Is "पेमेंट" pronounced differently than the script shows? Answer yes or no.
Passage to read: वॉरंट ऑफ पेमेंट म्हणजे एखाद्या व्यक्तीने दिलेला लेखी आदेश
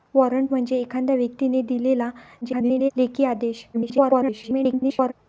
yes